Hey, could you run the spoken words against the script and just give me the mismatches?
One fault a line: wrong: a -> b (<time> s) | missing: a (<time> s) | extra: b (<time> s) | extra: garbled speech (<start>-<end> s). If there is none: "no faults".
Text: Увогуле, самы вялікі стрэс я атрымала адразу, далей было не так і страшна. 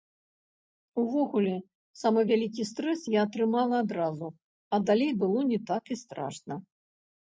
extra: а (4.7 s)